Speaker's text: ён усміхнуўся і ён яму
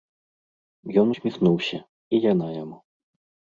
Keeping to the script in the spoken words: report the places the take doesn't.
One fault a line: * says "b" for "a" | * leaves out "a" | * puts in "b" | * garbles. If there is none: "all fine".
* says "яна" for "ён"